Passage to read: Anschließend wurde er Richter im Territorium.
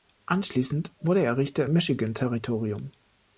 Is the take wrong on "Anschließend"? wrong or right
right